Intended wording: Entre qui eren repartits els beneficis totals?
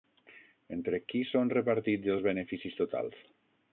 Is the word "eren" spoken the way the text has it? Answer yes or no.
no